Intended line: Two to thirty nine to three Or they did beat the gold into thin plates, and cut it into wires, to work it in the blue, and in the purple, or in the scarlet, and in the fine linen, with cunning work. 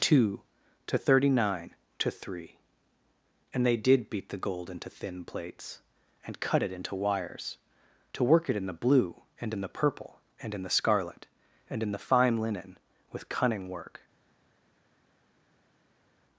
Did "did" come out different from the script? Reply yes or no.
no